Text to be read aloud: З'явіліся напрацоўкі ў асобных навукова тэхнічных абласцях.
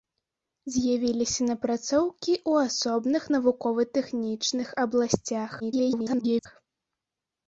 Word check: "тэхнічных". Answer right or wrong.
right